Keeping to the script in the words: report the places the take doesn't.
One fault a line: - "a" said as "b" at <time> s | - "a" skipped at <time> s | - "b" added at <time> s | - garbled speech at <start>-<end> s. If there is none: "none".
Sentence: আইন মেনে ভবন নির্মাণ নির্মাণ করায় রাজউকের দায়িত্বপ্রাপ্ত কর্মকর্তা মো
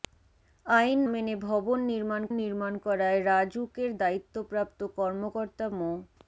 none